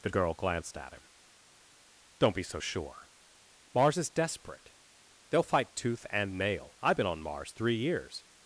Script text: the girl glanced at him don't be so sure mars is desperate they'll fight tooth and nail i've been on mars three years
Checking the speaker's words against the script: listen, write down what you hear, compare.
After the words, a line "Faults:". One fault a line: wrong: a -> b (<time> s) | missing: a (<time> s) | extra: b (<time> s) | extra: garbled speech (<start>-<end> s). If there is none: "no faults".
the girl glanced at him don't be so sure mars is desperate they'll fight tooth and nail i've been on mars three years
Faults:
no faults